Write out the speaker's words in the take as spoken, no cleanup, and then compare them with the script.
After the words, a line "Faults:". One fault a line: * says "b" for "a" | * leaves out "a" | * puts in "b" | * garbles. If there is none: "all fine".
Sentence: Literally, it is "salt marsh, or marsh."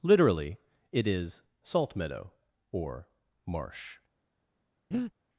Literally, it is "salt meadow, or marsh."
Faults:
* says "meadow" for "marsh"